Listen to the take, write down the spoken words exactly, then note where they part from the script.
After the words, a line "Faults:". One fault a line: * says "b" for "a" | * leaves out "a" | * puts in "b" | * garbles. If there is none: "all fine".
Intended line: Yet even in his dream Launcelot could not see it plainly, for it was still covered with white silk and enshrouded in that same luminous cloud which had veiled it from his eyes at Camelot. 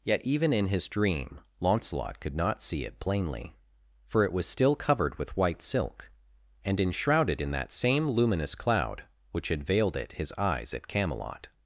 Yet even in his dream Launcelot could not see it plainly, for it was still covered with white silk and enshrouded in that same luminous cloud which had veiled it his eyes at Camelot.
Faults:
* leaves out "from"